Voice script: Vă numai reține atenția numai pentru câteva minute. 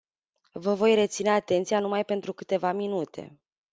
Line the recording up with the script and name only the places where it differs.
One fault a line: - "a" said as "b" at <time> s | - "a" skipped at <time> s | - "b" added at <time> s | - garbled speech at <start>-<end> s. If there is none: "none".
- "numai" said as "voi" at 0.7 s